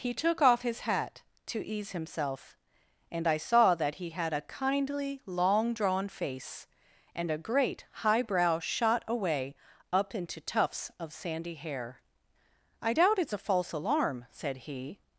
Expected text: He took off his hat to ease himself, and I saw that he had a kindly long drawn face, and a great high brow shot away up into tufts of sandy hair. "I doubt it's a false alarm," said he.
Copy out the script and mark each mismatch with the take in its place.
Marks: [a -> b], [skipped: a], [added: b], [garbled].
He took off his hat to ease himself, and I saw that he had a kindly long drawn face, and a great high brow shot away up into tufts of sandy hair. "I doubt it's a false alarm," said he.